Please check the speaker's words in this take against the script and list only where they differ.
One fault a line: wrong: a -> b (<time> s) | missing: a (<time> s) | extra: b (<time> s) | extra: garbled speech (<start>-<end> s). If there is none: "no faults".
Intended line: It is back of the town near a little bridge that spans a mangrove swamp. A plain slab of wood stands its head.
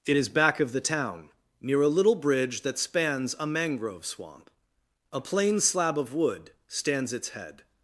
no faults